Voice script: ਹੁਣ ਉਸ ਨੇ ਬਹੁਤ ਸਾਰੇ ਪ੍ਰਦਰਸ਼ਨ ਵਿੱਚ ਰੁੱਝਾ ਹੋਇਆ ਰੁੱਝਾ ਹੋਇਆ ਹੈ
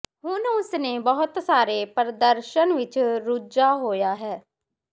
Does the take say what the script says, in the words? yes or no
no